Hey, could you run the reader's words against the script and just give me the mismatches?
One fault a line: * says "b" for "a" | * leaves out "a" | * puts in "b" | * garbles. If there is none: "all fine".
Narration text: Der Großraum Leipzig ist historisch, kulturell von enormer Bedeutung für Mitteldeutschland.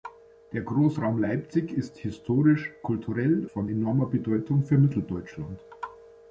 all fine